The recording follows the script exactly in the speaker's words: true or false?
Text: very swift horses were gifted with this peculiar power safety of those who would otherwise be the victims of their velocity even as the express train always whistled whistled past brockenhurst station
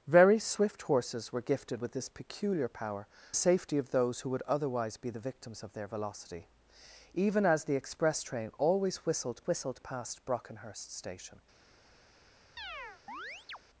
true